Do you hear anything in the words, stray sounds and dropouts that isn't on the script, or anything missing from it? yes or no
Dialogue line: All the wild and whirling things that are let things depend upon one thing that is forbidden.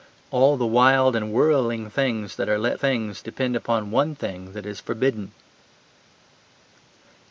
no